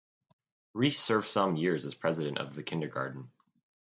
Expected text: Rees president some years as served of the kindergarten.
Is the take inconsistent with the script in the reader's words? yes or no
yes